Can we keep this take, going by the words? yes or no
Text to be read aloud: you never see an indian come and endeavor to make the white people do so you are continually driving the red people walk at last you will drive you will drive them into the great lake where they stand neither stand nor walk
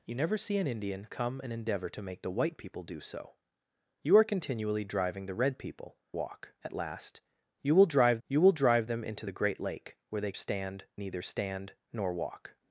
yes